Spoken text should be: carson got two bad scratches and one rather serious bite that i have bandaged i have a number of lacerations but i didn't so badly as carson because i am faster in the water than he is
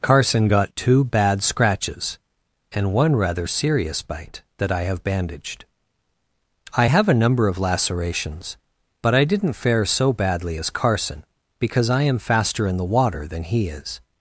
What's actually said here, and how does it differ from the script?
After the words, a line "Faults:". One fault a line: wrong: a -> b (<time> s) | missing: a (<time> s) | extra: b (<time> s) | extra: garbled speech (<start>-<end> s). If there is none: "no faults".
carson got two bad scratches and one rather serious bite that i have bandaged i have a number of lacerations but i didn't fare so badly as carson because i am faster in the water than he is
Faults:
extra: fare (9.5 s)